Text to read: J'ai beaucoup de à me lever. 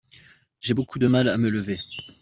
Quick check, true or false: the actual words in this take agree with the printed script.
false